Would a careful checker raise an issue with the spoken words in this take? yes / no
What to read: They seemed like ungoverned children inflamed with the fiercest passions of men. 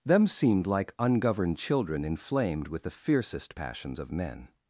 yes